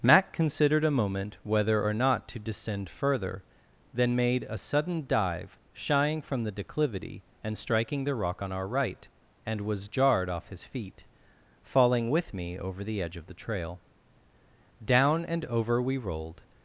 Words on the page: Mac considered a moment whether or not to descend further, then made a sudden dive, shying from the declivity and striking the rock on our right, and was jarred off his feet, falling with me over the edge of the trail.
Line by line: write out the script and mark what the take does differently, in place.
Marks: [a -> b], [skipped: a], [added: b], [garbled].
Mac considered a moment whether or not to descend further, then made a sudden dive, shying from the declivity and striking the rock on our right, and was jarred off his feet, falling with me over the edge of the trail. [added: Down and over we rolled]